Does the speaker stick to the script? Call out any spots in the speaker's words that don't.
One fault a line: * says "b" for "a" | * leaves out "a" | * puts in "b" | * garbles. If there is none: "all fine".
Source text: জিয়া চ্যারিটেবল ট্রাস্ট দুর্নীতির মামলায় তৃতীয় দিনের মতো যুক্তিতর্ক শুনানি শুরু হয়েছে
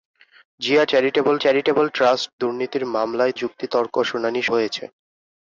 * puts in "চ্যারিটেবল"
* leaves out "তৃতীয় দিনের মতো"
* leaves out "শুরু"